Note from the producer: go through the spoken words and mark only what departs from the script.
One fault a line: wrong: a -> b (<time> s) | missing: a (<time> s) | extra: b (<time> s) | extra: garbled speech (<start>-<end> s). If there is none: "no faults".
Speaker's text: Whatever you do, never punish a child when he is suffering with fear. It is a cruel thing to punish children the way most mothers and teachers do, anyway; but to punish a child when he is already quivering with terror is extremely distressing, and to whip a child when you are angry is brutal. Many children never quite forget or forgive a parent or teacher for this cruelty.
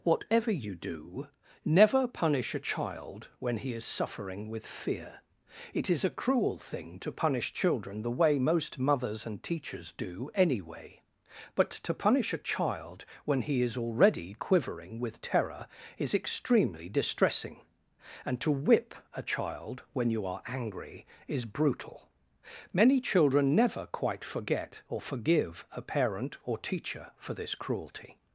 no faults